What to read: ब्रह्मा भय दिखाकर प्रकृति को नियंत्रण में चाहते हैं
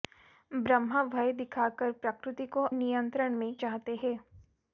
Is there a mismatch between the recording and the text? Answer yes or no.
no